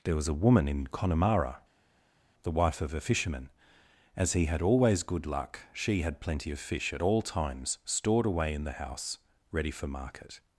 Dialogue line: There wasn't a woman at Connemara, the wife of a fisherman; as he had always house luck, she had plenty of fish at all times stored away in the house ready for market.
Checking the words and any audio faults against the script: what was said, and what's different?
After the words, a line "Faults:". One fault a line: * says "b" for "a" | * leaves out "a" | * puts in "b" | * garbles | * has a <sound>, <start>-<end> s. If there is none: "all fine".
There was a woman in Connemara, the wife of a fisherman; as he had always good luck, she had plenty of fish at all times stored away in the house ready for market.
Faults:
* says "was" for "wasn't"
* says "in" for "at"
* says "good" for "house"